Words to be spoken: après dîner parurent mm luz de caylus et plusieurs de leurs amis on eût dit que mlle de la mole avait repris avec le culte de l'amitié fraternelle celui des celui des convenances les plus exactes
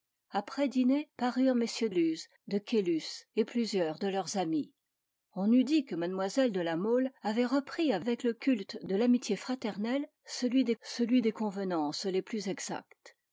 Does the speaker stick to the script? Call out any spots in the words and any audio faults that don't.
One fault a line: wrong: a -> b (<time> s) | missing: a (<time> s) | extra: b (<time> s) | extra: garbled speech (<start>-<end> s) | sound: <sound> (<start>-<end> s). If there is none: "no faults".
no faults